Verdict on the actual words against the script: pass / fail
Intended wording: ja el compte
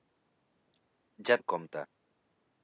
pass